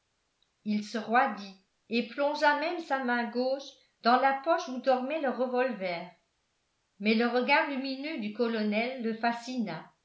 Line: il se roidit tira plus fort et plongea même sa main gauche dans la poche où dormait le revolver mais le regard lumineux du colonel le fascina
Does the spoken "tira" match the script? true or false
false